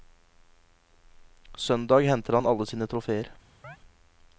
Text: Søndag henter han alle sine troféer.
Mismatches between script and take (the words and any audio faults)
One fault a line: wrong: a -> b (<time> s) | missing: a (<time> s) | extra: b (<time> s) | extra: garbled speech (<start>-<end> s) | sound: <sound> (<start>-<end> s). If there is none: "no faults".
sound: chirp (3.6-3.8 s)